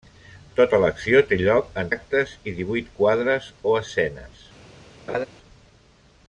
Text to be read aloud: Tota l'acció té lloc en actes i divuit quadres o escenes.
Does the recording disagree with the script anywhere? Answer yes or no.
no